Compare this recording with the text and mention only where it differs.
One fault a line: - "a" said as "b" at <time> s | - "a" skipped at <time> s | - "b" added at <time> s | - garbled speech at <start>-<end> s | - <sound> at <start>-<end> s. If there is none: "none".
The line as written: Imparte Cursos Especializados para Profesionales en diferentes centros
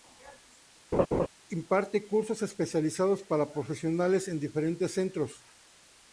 - laugh at 0.9-1.3 s